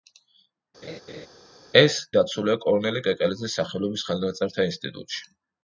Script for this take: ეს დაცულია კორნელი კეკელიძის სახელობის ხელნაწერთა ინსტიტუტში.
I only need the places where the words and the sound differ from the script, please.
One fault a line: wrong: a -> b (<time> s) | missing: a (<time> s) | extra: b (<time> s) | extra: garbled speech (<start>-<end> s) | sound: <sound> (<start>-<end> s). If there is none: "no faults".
sound: laugh (0.8-1.3 s)